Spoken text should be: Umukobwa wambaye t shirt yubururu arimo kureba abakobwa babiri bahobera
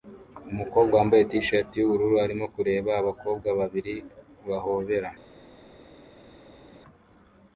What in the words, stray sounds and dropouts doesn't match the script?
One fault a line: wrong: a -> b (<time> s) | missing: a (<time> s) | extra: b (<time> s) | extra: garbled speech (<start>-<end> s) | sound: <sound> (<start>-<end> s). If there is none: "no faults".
no faults